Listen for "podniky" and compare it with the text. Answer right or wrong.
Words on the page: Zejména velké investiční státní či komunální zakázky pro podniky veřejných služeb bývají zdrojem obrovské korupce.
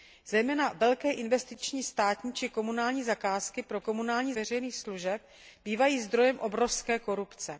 wrong